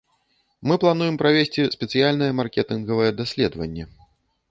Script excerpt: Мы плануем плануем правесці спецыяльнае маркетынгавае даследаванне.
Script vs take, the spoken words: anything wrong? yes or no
yes